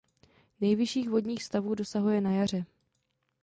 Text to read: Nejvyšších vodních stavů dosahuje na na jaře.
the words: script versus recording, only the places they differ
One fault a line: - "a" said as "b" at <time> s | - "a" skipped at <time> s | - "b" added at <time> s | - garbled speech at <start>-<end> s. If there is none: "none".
- "na" skipped at 2.3 s